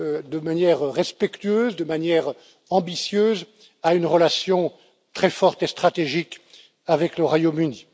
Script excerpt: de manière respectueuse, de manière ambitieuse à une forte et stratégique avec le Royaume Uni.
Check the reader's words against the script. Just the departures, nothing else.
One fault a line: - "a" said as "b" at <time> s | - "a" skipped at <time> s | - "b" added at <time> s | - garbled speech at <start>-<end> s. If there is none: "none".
- "relation très" added at 4.1 s